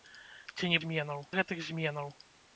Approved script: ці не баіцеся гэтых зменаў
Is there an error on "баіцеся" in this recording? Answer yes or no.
yes